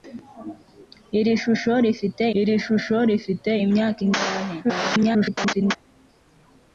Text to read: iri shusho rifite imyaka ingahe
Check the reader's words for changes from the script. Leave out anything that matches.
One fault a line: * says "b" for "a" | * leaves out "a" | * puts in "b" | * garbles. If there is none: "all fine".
* puts in "iri shusho rifite"
* garbles